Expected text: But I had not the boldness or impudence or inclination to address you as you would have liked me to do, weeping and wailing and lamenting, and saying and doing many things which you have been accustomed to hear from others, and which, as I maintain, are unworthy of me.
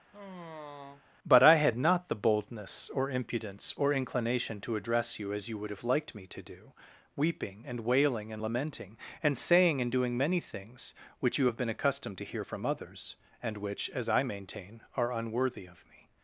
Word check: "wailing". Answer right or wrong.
right